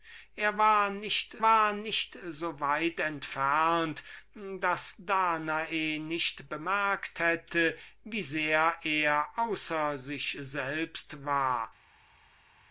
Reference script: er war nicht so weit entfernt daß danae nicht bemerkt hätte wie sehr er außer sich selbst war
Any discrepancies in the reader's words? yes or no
yes